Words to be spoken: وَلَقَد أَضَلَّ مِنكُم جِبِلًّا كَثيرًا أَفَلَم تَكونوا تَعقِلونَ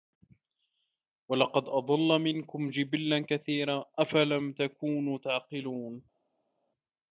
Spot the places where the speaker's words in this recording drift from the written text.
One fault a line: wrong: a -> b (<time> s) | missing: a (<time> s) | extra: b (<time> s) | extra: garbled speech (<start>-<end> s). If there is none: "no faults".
no faults